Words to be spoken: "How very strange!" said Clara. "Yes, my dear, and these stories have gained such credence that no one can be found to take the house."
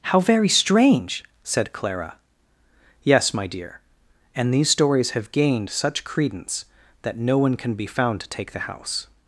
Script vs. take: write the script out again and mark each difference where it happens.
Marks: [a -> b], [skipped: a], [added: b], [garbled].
"How very strange!" said Clara. "Yes, my dear, and these stories have gained such credence that no one can be found to take the house."